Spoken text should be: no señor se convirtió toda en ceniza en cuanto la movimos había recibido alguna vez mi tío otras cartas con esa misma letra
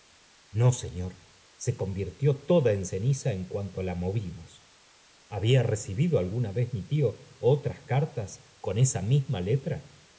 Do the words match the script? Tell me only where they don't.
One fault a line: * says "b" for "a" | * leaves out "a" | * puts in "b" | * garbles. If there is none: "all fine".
all fine